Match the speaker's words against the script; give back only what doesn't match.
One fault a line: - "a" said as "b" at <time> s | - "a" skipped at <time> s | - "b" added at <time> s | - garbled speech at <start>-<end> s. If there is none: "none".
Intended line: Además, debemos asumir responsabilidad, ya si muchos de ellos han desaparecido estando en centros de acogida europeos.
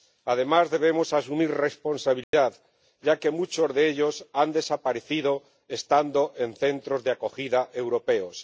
- "si" said as "que" at 3.2 s